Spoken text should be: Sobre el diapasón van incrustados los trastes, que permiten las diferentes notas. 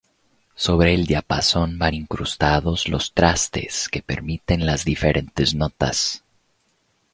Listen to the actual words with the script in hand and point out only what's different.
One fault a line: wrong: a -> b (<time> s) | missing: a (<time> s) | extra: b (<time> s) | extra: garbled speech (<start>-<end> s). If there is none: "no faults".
no faults